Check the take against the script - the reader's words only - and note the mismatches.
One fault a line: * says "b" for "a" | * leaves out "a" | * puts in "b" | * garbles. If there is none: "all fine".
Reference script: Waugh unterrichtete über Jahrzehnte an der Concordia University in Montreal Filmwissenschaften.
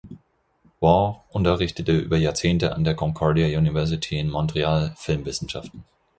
all fine